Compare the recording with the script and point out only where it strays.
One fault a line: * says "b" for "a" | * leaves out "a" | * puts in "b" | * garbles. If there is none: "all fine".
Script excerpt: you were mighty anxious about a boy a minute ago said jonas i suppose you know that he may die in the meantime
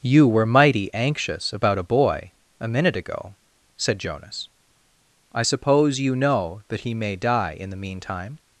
all fine